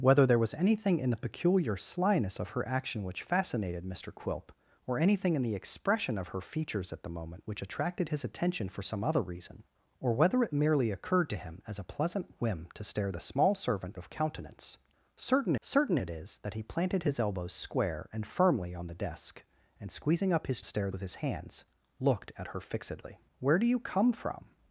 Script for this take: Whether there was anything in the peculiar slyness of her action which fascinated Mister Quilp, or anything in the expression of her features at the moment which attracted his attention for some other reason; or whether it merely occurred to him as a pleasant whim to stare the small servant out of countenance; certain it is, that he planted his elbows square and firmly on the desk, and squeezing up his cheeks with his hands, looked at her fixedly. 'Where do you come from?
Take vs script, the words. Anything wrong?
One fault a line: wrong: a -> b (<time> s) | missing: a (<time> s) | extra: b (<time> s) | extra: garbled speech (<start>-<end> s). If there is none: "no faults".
missing: out (13.9 s)
extra: certain (15.6 s)
wrong: cheeks -> stare (20.6 s)